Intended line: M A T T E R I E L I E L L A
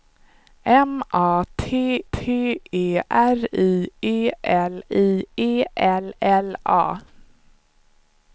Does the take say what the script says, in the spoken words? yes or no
yes